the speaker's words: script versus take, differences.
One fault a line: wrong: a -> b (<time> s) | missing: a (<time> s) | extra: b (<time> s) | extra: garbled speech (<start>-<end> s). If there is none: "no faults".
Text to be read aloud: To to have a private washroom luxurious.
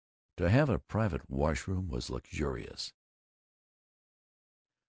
missing: to (0.5 s)
extra: was (1.9 s)